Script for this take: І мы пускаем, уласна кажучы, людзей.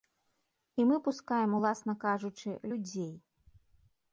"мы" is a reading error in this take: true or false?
false